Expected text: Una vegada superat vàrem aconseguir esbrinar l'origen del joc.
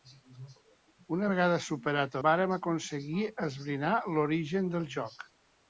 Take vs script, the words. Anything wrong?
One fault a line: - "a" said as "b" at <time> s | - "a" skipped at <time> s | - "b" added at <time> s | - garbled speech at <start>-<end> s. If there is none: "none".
none